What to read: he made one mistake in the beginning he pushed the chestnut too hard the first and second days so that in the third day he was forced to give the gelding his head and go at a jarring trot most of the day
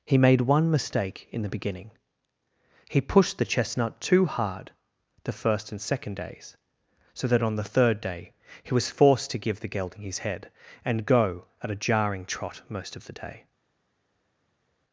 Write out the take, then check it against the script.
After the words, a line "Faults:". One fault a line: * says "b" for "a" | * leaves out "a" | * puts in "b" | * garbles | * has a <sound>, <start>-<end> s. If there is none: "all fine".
he made one mistake in the beginning he pushed the chestnut too hard the first and second days so that on the third day he was forced to give the gelding his head and go at a jarring trot most of the day
Faults:
* says "on" for "in"